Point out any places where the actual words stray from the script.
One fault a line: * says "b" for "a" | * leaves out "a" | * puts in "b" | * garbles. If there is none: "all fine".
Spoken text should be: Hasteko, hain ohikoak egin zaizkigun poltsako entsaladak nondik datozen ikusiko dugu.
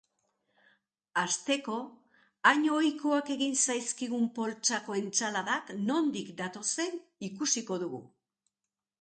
all fine